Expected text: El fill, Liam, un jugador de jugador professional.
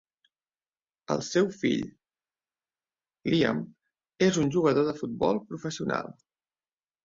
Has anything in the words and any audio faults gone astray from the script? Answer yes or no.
yes